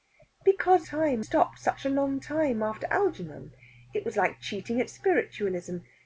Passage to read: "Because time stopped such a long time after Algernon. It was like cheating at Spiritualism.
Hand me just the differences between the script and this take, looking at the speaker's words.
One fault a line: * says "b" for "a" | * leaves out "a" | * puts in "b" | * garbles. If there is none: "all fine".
all fine